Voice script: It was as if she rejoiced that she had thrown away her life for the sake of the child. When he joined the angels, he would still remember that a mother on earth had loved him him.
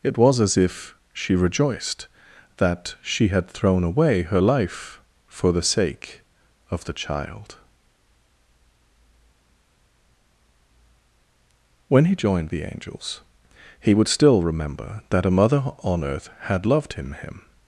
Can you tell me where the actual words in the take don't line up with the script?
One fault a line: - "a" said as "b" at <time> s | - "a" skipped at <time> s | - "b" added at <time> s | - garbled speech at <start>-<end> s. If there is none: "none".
none